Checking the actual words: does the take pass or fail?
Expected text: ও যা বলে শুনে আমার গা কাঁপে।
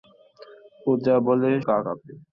fail